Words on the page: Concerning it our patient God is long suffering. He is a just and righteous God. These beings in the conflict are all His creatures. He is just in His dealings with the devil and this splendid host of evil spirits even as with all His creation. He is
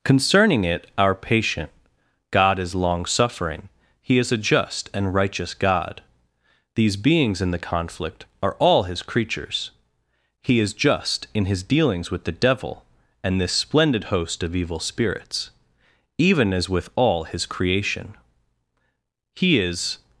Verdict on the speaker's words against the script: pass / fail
pass